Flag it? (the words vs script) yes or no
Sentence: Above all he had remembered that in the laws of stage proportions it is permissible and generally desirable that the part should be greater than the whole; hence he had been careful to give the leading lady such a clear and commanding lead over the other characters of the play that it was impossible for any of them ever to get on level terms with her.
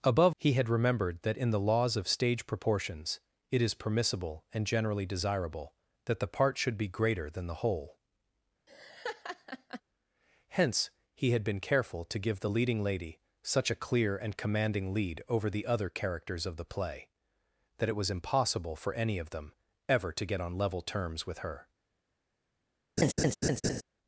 yes